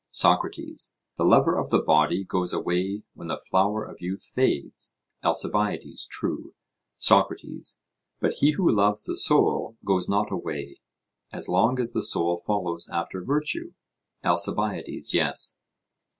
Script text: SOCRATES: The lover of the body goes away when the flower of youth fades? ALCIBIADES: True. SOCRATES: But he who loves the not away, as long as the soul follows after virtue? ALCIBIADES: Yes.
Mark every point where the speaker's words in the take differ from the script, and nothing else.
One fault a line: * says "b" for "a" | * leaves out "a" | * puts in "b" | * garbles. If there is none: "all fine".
* puts in "soul goes"